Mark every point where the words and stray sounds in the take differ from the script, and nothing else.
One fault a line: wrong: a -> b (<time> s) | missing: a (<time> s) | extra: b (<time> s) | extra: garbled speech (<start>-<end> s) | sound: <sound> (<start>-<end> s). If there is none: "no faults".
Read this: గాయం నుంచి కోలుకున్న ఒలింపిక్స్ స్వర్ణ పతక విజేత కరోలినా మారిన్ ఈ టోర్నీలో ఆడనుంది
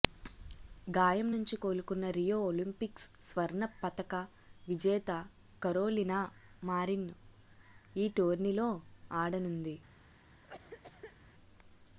extra: రియో (2.2 s)
sound: cough (10.4-11.2 s)